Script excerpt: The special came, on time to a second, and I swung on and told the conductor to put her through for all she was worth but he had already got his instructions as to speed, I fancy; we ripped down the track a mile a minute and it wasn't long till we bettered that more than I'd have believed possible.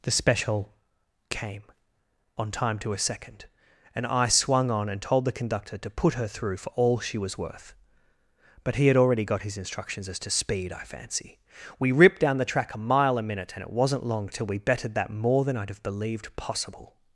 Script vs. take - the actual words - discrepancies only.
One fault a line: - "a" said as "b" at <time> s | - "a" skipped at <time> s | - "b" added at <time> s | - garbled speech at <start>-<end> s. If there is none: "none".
none